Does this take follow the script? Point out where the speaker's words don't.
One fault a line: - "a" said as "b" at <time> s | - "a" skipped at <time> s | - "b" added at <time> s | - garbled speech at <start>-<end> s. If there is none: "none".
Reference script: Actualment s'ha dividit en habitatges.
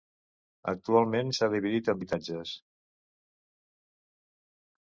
none